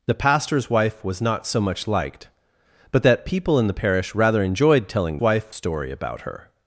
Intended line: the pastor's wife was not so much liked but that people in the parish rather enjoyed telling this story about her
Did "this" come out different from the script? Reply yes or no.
yes